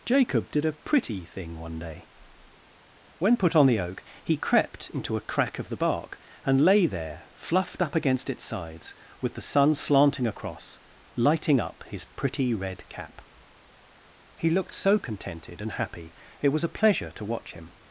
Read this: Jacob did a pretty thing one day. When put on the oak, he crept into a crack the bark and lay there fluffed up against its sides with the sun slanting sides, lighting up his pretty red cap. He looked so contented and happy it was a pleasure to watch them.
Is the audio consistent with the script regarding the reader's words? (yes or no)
no